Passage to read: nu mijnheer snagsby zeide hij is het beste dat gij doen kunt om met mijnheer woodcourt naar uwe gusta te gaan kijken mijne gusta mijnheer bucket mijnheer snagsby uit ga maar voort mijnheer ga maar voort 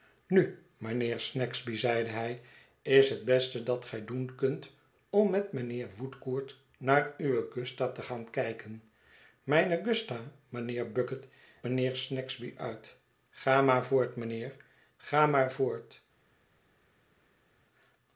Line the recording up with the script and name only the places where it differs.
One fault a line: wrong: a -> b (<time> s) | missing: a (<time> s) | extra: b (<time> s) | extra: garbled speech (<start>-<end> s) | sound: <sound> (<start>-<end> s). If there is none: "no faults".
no faults